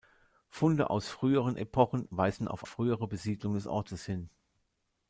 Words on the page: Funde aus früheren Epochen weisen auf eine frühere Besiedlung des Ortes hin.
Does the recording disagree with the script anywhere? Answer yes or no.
yes